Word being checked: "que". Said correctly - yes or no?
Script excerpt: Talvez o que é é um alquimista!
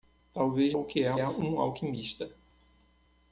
yes